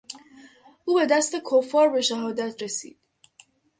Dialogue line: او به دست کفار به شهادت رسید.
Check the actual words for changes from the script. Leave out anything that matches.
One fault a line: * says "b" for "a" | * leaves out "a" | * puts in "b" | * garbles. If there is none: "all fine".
all fine